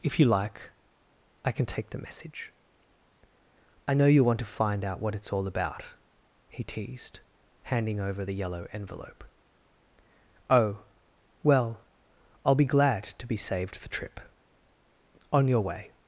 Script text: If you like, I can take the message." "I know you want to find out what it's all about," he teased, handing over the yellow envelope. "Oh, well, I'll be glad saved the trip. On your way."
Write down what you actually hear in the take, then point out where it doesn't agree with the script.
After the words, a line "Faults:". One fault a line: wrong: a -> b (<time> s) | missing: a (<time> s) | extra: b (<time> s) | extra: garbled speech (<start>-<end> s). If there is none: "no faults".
If you like, I can take the message." "I know you want to find out what it's all about," he teased, handing over the yellow envelope. "Oh, well, I'll be glad to be saved the trip. On your way."
Faults:
extra: to be (13.0 s)